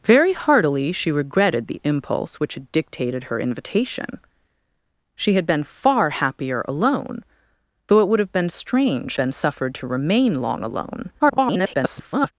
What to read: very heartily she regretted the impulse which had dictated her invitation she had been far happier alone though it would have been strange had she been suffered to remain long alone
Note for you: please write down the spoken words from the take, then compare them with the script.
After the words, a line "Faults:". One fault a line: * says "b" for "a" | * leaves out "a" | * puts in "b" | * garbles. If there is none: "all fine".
very heartily she regretted the impulse which had dictated her invitation she had been far happier alone though it would have been strange been suffered to remain long alone [garbled]
Faults:
* leaves out "had she"
* garbles